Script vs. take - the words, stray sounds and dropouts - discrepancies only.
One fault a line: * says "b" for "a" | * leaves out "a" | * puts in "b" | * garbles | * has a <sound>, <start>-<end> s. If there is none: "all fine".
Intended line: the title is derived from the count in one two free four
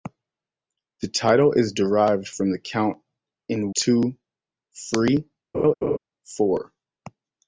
* leaves out "one"
* has a laugh, 5.5-6.0 s